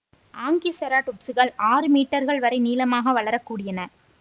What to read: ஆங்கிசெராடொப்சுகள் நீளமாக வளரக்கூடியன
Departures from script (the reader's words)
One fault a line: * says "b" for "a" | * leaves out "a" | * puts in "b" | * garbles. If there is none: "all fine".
* puts in "ஆறு மீட்டர்கள் வரை"